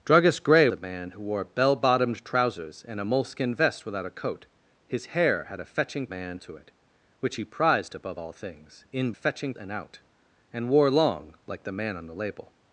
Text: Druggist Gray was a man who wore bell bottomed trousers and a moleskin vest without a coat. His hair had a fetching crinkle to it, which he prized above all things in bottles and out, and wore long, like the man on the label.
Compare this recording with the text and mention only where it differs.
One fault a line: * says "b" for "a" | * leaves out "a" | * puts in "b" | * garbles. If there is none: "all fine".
* leaves out "was"
* says "man" for "crinkle"
* says "fetching" for "bottles"